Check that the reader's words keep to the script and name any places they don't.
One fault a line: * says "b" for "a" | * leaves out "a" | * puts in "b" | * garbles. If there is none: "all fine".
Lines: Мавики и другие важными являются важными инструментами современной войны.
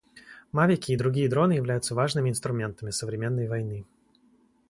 * says "дроны" for "важными"